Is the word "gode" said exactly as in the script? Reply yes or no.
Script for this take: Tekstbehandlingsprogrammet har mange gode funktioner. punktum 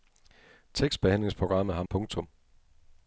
no